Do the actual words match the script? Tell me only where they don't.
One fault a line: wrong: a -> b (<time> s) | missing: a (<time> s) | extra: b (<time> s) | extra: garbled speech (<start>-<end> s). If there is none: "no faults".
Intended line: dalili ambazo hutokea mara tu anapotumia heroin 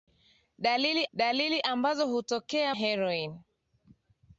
extra: dalili (1.1 s)
missing: mara tu anapotumia (2.7 s)